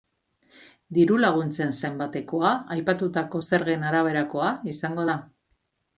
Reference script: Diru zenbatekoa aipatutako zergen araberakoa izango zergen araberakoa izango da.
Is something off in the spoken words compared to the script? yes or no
yes